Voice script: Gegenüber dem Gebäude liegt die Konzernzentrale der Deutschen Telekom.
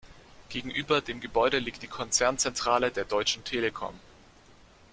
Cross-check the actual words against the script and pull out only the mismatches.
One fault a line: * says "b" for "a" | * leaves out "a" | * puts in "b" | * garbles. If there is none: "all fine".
all fine